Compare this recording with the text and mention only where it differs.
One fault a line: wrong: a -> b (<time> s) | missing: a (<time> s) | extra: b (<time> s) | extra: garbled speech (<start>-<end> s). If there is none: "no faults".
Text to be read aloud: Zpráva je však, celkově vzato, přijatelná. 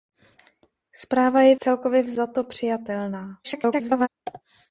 missing: však (1.6 s)
extra: garbled speech (3.4-4.1 s)